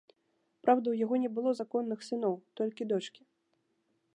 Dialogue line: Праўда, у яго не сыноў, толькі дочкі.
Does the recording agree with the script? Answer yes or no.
no